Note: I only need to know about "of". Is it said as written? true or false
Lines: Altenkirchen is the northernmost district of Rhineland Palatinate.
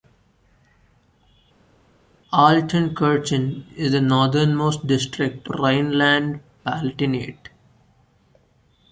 false